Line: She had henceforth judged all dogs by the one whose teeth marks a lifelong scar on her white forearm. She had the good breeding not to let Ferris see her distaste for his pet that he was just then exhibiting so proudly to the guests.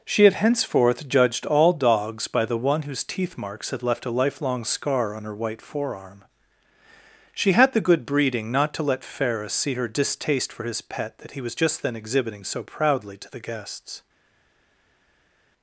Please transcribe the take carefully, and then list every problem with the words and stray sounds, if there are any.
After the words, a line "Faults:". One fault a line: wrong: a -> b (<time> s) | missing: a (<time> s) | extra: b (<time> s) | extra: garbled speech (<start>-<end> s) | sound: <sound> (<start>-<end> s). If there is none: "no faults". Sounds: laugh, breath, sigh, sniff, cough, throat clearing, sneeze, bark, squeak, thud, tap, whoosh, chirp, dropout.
She had henceforth judged all dogs by the one whose teeth marks had left a lifelong scar on her white forearm. She had the good breeding not to let Ferris see her distaste for his pet that he was just then exhibiting so proudly to the guests.
Faults:
extra: had left (3.7 s)